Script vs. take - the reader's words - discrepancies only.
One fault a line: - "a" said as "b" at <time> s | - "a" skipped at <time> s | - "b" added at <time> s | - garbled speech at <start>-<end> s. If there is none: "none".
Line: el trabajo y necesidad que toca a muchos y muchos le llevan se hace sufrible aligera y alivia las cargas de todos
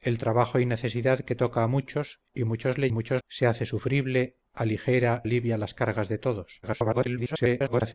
- "llevan" said as "muchos" at 2.9 s
- "y" skipped at 5.2 s
- garbled speech at 6.6-7.9 s